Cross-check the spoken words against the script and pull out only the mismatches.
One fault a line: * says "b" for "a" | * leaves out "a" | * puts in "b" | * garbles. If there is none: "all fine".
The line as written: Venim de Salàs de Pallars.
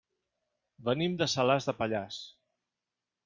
all fine